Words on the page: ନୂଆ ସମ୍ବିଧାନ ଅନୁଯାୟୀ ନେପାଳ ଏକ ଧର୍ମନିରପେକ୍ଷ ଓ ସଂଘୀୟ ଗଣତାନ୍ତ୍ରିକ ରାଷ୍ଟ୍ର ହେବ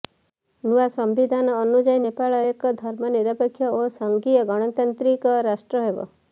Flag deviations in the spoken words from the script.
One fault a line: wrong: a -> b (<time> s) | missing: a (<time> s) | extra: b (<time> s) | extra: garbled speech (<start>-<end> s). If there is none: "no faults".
no faults